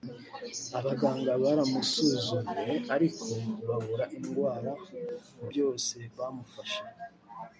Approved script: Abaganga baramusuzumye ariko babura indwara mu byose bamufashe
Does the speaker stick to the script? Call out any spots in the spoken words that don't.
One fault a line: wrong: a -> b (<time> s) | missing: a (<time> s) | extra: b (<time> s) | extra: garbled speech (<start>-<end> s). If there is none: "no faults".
no faults